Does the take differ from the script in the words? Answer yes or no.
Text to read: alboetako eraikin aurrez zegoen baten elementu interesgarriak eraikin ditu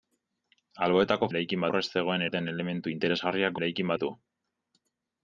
no